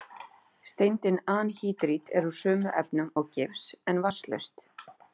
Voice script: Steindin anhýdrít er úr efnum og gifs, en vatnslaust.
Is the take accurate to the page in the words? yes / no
no